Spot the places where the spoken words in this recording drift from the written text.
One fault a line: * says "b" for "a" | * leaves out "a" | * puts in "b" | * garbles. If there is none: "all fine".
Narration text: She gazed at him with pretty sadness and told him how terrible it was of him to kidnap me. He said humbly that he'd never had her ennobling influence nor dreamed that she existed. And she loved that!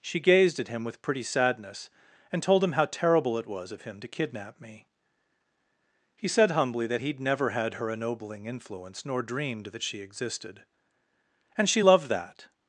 all fine